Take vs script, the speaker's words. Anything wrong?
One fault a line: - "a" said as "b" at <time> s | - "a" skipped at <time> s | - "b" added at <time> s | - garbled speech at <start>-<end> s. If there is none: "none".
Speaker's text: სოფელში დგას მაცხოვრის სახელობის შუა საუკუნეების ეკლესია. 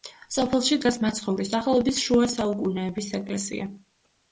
none